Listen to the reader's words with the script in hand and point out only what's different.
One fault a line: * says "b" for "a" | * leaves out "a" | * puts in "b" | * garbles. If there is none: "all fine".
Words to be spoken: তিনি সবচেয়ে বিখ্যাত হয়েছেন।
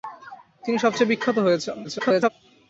* garbles